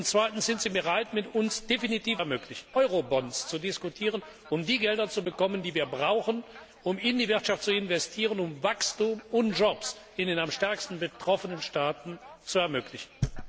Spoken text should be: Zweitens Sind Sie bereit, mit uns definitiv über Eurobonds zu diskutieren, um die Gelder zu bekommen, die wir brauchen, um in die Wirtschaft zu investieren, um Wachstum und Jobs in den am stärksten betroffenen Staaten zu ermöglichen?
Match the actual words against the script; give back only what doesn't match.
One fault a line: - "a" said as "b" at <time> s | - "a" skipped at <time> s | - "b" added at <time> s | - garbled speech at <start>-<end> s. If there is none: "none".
- "über" said as "ermöglichen" at 2.2 s